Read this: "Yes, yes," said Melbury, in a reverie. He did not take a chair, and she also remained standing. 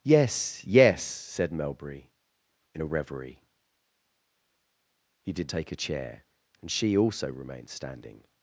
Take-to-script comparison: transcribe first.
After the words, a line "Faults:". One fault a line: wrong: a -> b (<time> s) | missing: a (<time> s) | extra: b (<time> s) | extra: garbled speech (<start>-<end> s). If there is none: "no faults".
"Yes, yes," said Melbury, in a reverie. He did take a chair, and she also remained standing.
Faults:
missing: not (5.5 s)